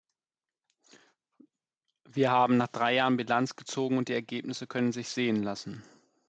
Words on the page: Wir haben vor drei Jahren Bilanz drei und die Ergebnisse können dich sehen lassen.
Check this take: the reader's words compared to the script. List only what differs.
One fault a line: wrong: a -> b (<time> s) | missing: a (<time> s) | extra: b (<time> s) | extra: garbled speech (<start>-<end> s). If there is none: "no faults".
wrong: vor -> nach (2.6 s)
wrong: drei -> gezogen (3.6 s)
wrong: dich -> sich (4.9 s)